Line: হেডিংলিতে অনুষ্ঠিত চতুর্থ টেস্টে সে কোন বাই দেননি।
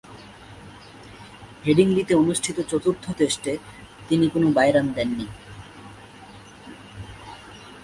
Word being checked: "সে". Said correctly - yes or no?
no